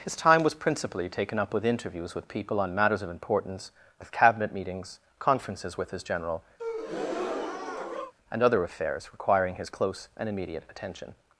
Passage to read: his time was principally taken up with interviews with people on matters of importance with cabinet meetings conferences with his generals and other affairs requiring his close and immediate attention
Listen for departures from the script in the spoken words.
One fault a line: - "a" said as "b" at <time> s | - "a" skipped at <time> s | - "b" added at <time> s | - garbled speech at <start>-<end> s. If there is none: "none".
- "generals" said as "general" at 6.0 s